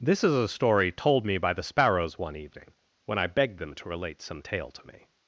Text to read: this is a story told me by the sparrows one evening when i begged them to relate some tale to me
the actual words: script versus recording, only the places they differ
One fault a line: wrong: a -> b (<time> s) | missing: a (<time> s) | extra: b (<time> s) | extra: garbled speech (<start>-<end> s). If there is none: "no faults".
no faults